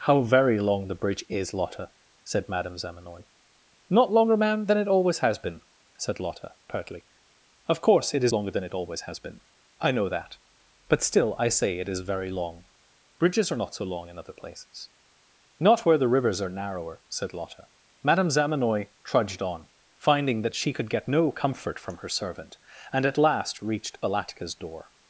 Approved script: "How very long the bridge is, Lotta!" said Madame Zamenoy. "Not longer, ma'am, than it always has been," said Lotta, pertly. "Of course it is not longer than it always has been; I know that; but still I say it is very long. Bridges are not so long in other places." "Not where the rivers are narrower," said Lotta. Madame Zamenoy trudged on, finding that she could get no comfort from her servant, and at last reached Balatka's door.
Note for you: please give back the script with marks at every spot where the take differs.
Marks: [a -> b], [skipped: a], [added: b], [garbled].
"How very long the bridge is, Lotta!" said Madame Zamenoy. "Not longer, ma'am, than it always has been," said Lotta, pertly. "Of course it is [skipped: not] longer than it always has been; I know that; but still I say it is very long. Bridges are not so long in other places." "Not where the rivers are narrower," said Lotta. Madame Zamenoy trudged on, finding that she could get no comfort from her servant, and at last reached Balatka's door.